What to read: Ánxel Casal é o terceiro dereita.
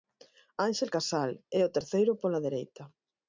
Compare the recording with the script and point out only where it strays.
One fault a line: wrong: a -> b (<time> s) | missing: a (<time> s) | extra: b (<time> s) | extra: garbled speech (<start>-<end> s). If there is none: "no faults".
extra: pola (2.2 s)